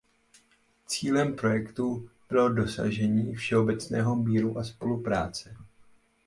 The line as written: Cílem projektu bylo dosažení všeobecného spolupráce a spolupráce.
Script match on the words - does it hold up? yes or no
no